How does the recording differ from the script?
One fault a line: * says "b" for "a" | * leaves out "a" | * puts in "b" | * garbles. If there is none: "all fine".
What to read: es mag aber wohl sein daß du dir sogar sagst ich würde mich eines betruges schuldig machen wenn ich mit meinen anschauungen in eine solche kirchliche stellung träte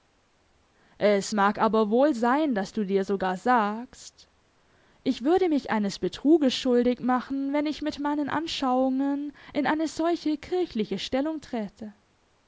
all fine